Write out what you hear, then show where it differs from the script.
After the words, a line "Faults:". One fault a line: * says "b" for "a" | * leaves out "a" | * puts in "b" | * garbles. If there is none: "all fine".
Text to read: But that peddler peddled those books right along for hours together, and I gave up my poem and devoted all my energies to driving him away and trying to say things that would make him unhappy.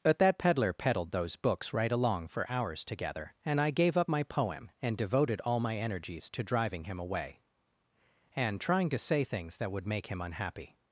But that peddler peddled those books right along for hours together, and I gave up my poem and devoted all my energies to driving him away and trying to say things that would make him unhappy.
Faults:
all fine